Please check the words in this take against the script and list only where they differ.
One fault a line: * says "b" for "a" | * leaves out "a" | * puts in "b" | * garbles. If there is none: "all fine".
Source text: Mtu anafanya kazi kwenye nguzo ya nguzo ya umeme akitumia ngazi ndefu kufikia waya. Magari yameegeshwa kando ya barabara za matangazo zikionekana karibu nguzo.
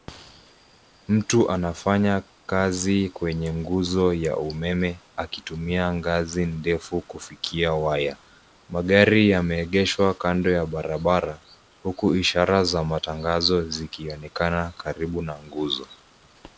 * leaves out "nguzo ya"
* puts in "huku ishara"
* puts in "na"